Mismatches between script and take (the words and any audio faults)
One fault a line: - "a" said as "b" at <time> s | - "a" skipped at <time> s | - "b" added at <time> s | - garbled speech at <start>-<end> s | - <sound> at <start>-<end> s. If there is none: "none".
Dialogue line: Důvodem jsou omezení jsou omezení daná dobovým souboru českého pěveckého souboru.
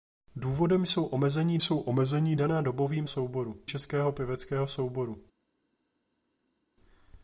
none